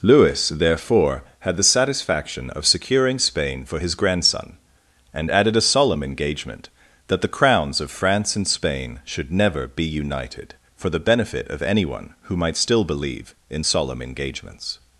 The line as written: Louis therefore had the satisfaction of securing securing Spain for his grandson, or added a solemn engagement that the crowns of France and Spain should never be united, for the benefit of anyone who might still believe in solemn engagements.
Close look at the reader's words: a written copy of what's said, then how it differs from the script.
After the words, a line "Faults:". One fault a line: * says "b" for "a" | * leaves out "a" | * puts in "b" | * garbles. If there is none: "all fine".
Louis therefore had the satisfaction of securing Spain for his grandson, and added a solemn engagement that the crowns of France and Spain should never be united, for the benefit of anyone who might still believe in solemn engagements.
Faults:
* leaves out "securing"
* says "and" for "or"